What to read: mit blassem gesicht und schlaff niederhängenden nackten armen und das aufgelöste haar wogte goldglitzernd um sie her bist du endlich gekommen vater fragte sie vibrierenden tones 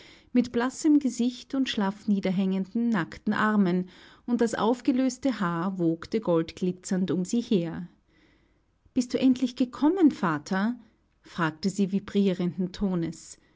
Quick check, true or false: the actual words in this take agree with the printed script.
true